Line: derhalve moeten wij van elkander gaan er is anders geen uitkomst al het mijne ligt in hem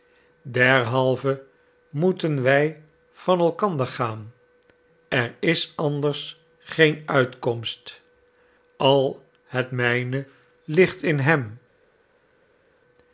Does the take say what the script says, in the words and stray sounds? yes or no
yes